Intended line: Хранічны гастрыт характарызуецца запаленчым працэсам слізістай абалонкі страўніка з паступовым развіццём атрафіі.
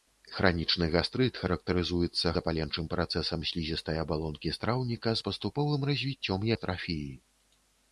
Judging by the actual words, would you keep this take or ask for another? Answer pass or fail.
pass